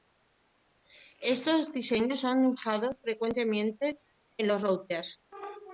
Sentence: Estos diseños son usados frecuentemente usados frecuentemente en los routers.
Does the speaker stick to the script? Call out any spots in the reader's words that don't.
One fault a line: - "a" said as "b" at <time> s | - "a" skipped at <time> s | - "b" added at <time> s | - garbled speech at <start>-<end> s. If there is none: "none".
- "usados frecuentemente" skipped at 4.0 s